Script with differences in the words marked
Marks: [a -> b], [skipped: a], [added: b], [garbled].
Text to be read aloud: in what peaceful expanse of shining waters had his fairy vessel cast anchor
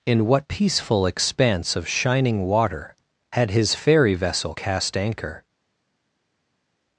in what peaceful expanse of shining [waters -> water] had his fairy vessel cast anchor